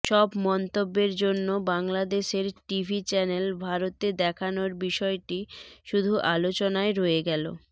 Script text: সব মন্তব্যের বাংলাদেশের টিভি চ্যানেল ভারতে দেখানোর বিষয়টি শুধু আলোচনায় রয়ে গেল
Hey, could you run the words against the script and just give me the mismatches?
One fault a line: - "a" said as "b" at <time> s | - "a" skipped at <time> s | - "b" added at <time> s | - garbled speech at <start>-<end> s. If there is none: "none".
- "জন্য" added at 1.1 s